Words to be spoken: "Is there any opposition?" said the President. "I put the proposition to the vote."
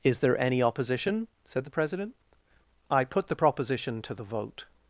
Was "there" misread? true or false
false